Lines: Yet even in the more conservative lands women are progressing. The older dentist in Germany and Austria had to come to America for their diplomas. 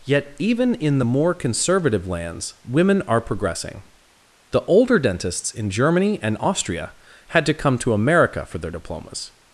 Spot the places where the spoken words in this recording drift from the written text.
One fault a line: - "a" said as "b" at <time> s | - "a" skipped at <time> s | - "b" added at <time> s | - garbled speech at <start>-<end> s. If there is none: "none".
- "dentist" said as "dentists" at 5.0 s